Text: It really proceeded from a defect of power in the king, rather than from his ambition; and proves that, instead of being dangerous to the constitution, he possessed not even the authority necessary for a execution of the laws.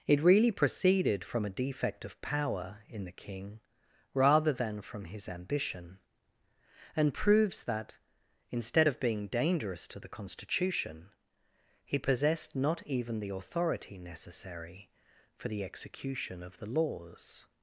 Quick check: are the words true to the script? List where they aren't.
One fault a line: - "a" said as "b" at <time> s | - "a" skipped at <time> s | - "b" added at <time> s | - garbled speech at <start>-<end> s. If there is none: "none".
- "a" said as "the" at 15.5 s